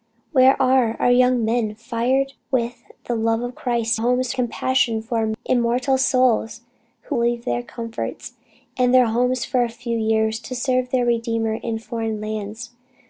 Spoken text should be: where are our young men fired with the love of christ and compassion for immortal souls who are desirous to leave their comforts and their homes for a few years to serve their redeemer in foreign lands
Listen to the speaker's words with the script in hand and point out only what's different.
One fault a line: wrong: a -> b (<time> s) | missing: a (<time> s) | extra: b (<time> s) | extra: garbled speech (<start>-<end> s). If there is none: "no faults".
wrong: and -> homes (3.9 s)
missing: are desirous to (7.2 s)